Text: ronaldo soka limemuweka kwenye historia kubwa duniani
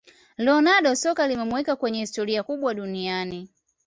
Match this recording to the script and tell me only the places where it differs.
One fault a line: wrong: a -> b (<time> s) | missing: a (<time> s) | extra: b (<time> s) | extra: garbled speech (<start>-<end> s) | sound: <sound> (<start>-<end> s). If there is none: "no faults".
no faults